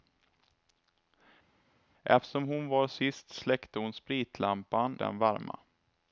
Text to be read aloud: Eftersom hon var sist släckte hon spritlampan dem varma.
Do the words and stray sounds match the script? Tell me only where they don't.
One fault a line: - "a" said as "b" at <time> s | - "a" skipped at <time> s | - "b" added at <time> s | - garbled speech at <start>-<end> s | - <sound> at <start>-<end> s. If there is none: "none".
none